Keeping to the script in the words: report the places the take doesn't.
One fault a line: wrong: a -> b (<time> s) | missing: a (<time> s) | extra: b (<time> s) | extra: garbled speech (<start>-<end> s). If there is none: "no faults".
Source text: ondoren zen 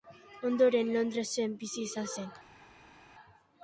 extra: londresen bizi izan (0.9 s)